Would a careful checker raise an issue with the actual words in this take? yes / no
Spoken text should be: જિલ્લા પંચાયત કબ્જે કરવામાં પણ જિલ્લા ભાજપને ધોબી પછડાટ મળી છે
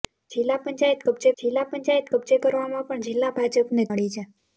yes